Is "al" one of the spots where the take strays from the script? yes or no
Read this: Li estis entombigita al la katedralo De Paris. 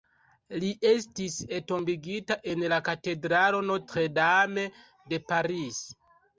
yes